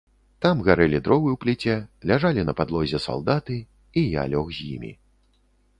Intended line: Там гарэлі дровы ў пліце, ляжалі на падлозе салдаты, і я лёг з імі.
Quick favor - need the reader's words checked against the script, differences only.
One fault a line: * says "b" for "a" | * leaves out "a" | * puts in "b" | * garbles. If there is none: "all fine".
all fine